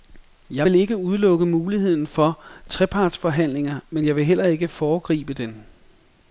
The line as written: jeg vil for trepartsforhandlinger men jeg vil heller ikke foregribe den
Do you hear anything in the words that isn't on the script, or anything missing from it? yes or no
yes